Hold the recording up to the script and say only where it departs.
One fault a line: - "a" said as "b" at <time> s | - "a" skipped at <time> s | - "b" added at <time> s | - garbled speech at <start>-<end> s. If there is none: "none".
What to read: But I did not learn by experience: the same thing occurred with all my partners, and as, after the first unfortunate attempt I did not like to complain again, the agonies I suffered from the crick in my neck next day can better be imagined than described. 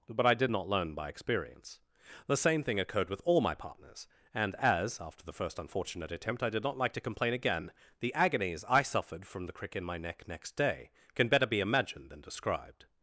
none